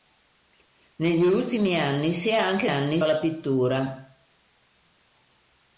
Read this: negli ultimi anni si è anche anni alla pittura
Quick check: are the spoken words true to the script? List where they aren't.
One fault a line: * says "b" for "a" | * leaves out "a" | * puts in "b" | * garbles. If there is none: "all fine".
all fine